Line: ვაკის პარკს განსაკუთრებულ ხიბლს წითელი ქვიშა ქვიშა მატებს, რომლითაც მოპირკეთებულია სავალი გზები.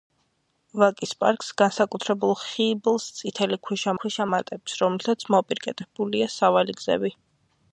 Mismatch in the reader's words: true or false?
false